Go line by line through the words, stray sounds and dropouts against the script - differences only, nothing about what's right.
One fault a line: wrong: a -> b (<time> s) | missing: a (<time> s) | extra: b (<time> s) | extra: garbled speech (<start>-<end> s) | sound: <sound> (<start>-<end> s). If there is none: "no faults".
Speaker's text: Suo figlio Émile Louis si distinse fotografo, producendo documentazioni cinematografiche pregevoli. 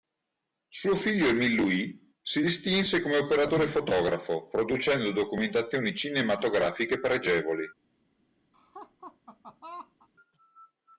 extra: come operatore (3.0 s)
sound: laugh (8.5-10.1 s)